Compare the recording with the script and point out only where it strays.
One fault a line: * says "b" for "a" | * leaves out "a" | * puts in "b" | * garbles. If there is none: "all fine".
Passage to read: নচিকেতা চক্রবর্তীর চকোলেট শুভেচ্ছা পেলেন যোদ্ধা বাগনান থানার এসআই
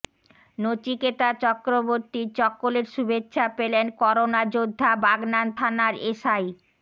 * puts in "করোনা"